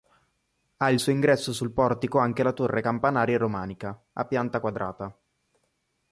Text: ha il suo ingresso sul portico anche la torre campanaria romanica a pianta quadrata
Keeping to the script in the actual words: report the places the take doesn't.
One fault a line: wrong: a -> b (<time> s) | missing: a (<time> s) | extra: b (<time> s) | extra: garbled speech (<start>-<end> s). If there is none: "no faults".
no faults